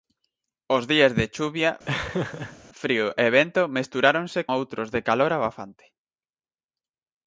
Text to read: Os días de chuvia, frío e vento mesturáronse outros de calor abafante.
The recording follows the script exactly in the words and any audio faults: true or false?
false